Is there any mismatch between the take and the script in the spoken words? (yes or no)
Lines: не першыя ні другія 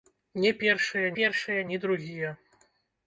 yes